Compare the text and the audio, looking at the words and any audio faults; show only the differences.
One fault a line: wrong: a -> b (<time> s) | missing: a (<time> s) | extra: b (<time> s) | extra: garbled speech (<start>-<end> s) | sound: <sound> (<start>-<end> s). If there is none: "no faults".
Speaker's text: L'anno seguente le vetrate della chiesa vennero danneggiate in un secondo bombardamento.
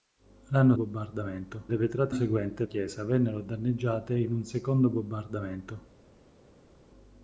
wrong: seguente -> bombardamento (0.7 s)
wrong: della -> seguente (2.1 s)